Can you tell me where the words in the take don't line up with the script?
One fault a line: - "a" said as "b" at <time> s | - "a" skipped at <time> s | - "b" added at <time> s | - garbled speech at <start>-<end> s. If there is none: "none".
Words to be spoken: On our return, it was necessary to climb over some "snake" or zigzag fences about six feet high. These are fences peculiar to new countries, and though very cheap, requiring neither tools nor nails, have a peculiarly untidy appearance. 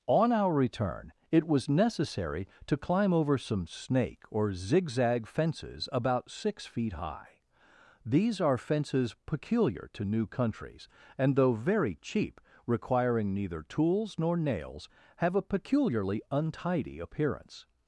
none